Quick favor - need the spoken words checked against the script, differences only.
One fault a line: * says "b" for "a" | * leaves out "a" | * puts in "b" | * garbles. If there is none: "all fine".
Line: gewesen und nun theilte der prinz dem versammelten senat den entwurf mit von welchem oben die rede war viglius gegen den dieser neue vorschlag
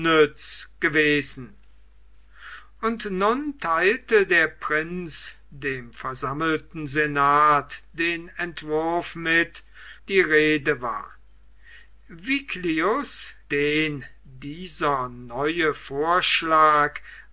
* leaves out "von welchem oben"
* leaves out "gegen"